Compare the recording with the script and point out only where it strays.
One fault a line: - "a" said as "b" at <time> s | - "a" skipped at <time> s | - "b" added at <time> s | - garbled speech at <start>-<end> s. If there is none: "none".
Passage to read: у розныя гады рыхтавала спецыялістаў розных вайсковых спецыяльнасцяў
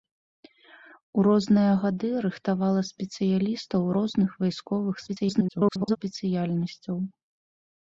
- garbled speech at 5.1-6.0 s